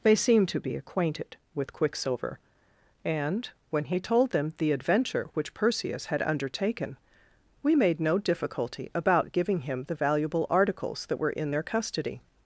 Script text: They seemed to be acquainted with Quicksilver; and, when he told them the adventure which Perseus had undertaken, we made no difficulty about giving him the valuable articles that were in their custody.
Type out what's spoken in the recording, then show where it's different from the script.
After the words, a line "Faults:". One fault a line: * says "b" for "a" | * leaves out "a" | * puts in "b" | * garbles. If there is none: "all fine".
They seemed to be acquainted with Quicksilver; and, when he told them the adventure which Perseus had undertaken, we made no difficulty about giving him the valuable articles that were in their custody.
Faults:
all fine